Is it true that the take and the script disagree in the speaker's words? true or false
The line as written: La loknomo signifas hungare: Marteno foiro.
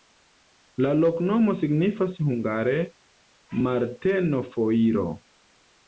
false